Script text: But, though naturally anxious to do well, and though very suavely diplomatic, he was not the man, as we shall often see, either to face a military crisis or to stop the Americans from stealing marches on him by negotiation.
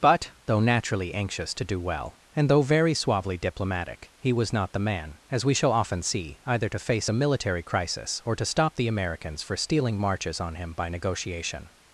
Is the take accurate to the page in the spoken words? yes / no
no